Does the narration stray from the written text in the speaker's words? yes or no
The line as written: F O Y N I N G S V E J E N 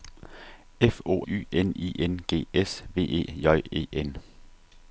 no